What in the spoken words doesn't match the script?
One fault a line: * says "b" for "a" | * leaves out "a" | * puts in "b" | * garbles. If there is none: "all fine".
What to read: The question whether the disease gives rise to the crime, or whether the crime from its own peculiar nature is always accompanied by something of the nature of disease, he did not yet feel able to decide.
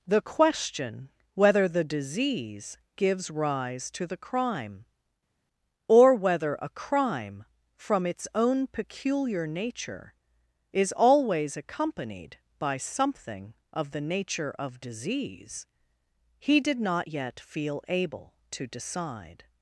* says "a" for "the"